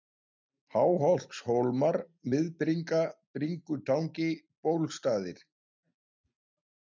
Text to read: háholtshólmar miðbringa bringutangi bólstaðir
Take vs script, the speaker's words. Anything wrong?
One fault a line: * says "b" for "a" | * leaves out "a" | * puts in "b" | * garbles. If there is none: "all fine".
all fine